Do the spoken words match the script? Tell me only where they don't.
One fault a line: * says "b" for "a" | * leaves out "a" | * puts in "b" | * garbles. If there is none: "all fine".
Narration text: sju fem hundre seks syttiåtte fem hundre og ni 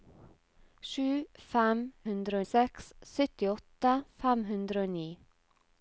all fine